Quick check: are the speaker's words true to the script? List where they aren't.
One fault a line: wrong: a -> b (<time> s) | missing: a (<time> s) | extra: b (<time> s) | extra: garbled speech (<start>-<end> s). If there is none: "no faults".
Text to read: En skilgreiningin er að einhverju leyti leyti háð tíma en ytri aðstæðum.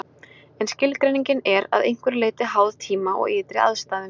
missing: leyti (2.5 s)
wrong: en -> og (3.2 s)